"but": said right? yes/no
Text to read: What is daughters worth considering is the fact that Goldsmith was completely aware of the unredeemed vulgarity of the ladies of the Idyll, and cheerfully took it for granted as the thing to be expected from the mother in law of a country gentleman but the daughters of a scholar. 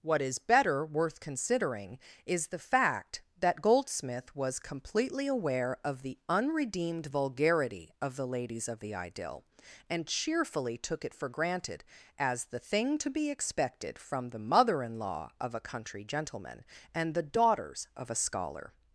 no